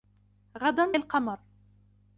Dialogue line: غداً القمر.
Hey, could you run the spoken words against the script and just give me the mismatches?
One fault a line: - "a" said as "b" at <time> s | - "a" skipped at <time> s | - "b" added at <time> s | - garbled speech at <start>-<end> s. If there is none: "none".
none